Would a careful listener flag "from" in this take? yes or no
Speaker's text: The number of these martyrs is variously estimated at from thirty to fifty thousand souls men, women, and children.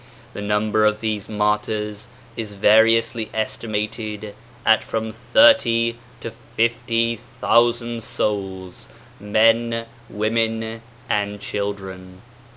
no